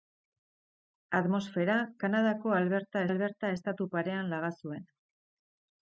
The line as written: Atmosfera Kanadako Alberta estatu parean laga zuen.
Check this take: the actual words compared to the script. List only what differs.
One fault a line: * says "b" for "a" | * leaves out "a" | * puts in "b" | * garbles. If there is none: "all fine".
* puts in "Alberta"